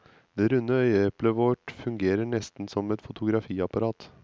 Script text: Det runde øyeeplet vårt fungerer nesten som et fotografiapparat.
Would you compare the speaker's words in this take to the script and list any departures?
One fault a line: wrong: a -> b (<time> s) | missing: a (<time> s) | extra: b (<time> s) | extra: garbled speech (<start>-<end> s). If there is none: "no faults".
no faults